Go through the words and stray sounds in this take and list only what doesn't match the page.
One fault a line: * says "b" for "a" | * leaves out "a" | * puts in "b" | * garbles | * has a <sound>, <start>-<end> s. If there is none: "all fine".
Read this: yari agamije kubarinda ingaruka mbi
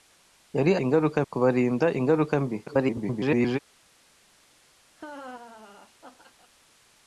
* says "ingaruka" for "agamije"
* garbles
* has a laugh, 5.0-6.5 s